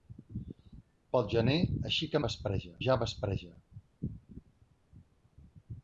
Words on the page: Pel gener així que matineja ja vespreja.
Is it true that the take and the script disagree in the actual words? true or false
true